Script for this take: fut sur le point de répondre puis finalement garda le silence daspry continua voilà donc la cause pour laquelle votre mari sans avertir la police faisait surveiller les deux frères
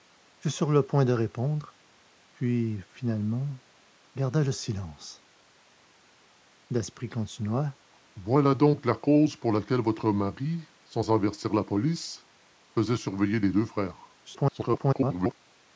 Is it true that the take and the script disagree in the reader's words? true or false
true